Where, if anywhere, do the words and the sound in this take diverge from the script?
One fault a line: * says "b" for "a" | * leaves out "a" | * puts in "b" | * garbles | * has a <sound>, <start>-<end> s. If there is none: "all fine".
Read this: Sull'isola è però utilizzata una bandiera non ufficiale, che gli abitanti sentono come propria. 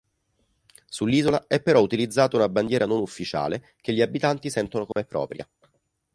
* has a dropout, 4.9-5.0 s